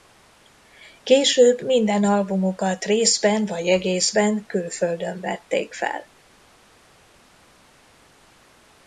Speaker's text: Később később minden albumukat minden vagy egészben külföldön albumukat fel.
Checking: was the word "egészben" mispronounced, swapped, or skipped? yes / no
no